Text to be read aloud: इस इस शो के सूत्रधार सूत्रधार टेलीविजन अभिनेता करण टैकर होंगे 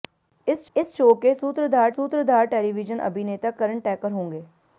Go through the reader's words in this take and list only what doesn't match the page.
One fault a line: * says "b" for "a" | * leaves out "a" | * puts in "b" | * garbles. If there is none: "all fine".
all fine